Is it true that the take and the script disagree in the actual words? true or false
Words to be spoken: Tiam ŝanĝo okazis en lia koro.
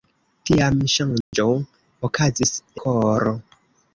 true